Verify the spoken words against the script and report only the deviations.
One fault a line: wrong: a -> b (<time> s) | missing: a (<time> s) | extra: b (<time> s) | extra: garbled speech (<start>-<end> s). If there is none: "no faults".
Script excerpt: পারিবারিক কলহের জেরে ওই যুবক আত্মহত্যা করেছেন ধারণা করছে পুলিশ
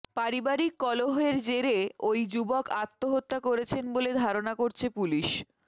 extra: বলে (3.9 s)